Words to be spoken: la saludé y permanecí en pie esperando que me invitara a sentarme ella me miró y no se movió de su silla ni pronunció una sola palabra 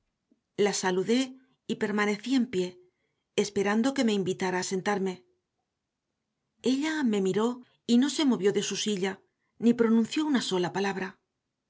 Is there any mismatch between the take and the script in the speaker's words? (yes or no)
no